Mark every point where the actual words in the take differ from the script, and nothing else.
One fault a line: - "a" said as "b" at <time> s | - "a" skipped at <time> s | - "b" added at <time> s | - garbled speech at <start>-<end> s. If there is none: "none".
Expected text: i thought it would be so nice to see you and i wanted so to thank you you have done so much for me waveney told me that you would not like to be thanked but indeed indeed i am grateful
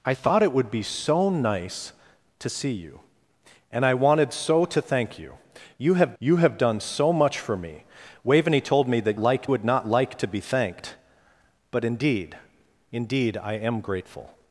- "you have" added at 6.2 s
- "you" said as "like" at 9.2 s